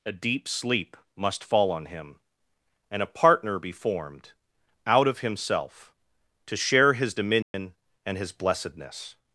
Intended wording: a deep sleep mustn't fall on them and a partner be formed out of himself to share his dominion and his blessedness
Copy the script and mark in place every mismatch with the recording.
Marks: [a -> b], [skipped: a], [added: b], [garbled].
a deep sleep [mustn't -> must] fall on [them -> him] and a partner be formed out of himself to share his dominion and his blessedness